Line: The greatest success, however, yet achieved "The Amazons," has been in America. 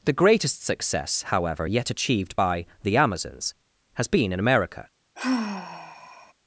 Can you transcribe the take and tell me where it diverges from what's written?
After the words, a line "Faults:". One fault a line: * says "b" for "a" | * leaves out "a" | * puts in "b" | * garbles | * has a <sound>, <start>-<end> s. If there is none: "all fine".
The greatest success, however, yet achieved by "The Amazons," has been in America.
Faults:
* puts in "by"
* has a sigh, 5.2-6.3 s